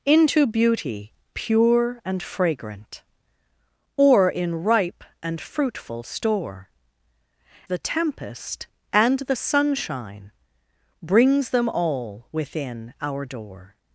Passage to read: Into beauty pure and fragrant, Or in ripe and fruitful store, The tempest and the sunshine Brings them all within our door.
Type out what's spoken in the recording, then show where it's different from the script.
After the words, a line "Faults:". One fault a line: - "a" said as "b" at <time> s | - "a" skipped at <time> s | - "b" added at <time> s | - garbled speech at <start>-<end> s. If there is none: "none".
Into beauty pure and fragrant, Or in ripe and fruitful store, The tempest and the sunshine Brings them all within our door.
Faults:
none